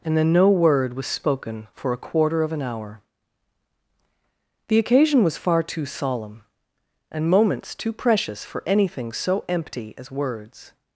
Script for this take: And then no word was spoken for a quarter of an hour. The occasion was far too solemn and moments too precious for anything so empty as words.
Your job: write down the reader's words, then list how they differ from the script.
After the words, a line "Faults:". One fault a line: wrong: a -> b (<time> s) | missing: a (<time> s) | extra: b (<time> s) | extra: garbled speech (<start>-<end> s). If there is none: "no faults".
And then no word was spoken for a quarter of an hour. The occasion was far too solemn and moments too precious for anything so empty as words.
Faults:
no faults